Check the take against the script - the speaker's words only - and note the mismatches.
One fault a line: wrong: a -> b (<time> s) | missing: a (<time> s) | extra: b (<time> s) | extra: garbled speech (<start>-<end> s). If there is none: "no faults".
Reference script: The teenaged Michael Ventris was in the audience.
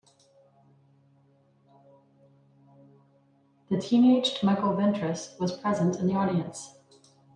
extra: present (5.5 s)